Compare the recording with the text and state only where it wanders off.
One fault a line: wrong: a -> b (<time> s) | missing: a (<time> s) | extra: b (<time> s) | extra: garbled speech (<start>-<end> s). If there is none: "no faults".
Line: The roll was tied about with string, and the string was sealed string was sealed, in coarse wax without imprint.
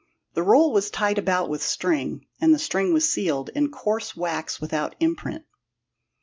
missing: string was sealed (3.5 s)